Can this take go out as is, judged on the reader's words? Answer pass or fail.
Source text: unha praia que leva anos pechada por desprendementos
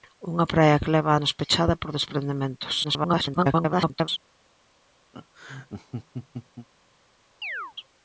fail